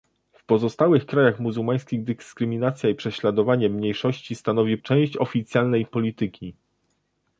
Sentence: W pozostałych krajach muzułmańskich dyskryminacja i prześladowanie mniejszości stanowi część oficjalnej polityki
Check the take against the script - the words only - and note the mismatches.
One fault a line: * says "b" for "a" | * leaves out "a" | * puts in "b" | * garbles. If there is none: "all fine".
all fine